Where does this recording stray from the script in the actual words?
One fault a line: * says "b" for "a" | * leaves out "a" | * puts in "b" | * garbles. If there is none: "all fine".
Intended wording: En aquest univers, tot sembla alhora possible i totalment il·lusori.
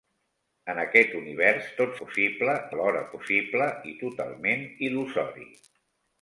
* says "possible" for "sembla"